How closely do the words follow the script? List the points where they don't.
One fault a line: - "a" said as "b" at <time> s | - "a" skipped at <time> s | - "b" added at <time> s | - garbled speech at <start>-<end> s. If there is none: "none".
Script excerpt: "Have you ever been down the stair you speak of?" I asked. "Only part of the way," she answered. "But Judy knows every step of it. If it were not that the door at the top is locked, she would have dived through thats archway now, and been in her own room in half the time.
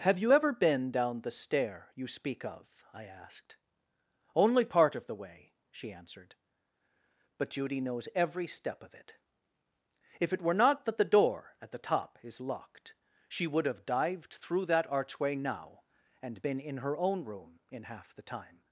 - "thats" said as "that" at 14.7 s